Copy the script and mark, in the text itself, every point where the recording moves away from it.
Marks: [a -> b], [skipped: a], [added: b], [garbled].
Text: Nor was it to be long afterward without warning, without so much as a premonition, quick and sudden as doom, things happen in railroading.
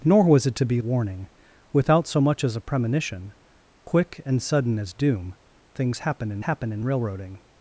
Nor was it to be [skipped: long afterward without] warning, without so much as a premonition, quick and sudden as doom, things happen in [added: happen in] railroading.